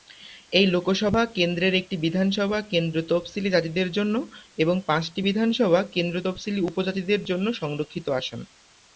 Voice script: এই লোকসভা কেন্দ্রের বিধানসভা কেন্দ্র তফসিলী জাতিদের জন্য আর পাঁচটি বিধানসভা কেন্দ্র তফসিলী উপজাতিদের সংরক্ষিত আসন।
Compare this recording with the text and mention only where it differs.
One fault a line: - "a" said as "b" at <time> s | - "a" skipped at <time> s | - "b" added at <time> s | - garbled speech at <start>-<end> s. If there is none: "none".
- "একটি" added at 1.8 s
- "আর" said as "এবং" at 4.6 s
- "জন্য" added at 7.2 s